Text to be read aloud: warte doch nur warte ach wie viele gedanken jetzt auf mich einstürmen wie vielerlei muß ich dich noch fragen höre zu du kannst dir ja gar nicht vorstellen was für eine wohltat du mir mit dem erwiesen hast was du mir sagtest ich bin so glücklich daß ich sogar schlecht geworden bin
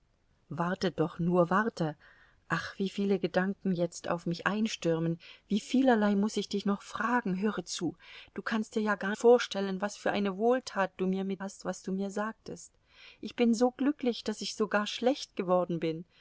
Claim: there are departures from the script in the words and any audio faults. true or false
true